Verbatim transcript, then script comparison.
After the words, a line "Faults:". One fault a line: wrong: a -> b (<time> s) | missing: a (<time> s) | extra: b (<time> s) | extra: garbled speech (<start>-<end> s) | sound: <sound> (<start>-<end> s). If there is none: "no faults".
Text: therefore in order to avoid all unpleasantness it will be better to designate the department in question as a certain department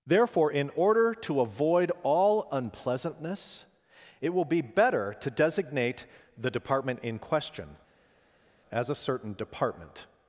therefore in order to avoid all unpleasantness it will be better to designate the department in question as a certain department
Faults:
no faults